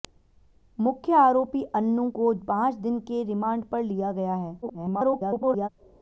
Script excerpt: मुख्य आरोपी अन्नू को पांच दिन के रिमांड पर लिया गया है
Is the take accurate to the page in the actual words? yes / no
no